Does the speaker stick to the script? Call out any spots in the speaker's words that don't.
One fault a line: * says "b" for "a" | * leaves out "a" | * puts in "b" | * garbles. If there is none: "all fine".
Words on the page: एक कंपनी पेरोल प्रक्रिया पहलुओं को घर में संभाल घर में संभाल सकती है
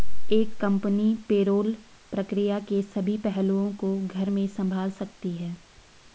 * puts in "के सभी"
* leaves out "घर में संभाल"